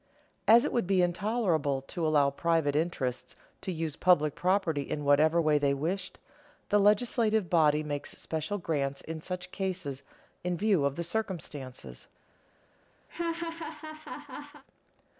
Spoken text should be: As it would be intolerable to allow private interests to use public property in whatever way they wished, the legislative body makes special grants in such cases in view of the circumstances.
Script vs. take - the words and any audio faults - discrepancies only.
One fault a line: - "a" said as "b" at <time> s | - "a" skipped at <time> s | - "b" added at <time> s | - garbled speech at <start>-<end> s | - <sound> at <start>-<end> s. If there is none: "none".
- laugh at 13.1-14.6 s